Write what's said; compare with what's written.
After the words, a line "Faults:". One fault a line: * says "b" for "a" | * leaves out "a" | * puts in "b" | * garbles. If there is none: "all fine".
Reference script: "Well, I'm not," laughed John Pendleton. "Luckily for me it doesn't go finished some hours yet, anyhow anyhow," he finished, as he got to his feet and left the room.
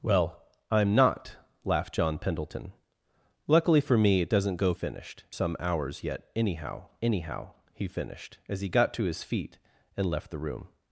"Well, I'm not," laughed John Pendleton. "Luckily for me it doesn't go finished some hours yet, anyhow anyhow," he finished, as he got to his feet and left the room.
Faults:
all fine